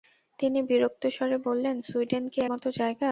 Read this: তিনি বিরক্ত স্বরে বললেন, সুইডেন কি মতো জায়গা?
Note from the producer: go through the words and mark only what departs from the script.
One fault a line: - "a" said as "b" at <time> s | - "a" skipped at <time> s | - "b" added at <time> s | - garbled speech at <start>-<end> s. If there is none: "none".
none